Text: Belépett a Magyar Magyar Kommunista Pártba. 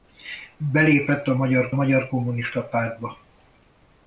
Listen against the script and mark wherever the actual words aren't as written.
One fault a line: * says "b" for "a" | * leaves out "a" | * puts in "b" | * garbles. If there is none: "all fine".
all fine